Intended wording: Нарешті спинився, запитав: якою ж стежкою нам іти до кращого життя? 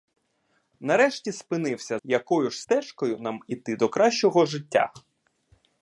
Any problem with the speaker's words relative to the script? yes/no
yes